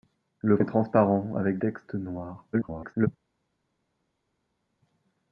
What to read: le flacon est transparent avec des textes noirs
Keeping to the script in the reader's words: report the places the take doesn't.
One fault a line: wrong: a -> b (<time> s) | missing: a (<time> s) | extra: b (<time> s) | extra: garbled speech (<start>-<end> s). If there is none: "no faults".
missing: flacon (0.6 s)
missing: des (1.6 s)
extra: garbled speech (2.5-3.1 s)